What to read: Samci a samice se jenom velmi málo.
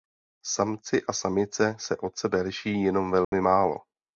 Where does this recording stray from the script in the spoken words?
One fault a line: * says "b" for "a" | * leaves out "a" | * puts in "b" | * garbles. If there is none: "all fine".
* puts in "od sebe liší"